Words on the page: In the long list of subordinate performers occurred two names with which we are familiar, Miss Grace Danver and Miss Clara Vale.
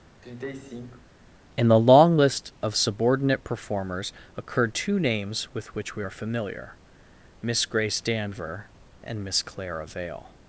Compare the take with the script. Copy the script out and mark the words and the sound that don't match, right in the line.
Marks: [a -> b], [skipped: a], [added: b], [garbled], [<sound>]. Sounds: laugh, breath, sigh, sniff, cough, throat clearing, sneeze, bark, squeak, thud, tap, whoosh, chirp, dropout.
[sigh] In the long list of subordinate performers occurred two names with which we are familiar, Miss Grace Danver and Miss Clara Vale.